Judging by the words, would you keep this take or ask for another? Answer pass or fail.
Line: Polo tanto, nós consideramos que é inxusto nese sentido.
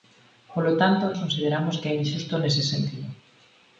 fail